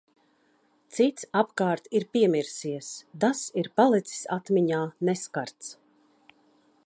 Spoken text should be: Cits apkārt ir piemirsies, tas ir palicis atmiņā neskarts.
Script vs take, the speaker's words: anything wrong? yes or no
no